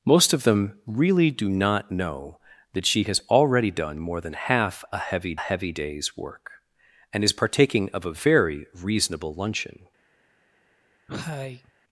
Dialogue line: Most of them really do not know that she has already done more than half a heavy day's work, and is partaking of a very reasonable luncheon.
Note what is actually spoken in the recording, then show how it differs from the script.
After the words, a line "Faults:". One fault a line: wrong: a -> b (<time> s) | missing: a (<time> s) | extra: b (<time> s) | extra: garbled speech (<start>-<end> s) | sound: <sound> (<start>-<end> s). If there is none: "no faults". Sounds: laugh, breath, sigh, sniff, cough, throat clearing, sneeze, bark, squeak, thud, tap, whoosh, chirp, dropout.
Most of them really do not know that she has already done more than half a heavy heavy day's work, and is partaking of a very reasonable luncheon.
Faults:
extra: heavy (5.4 s)
sound: cough (11.1-11.7 s)